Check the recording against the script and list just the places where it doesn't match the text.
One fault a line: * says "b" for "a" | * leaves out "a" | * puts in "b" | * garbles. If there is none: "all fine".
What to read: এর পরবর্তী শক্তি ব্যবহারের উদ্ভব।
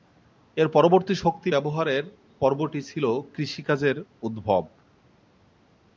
* puts in "পর্বটি ছিল কৃষিকাজের"